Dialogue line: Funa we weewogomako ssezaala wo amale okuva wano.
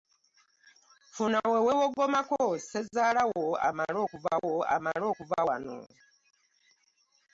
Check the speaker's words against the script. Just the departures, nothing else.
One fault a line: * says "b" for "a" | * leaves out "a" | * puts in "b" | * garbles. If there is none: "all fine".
* puts in "wo amale okuva"